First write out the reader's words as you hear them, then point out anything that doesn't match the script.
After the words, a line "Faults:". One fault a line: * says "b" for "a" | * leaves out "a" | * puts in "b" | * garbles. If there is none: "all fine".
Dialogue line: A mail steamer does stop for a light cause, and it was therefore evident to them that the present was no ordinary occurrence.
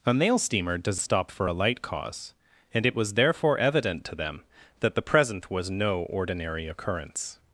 A mail steamer does stop for a light cause, and it was therefore evident to them that the present was no ordinary occurrence.
Faults:
all fine